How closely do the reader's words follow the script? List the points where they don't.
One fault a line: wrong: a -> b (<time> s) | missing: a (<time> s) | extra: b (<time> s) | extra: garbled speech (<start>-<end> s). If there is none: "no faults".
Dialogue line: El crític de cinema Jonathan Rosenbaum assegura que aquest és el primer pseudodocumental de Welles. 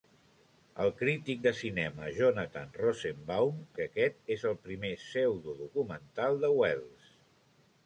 missing: assegura (3.6 s)